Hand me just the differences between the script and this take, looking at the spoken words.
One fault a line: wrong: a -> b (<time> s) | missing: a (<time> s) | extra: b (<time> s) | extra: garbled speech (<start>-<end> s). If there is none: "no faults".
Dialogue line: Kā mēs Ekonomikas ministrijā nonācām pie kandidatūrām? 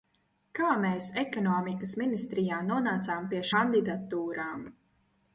no faults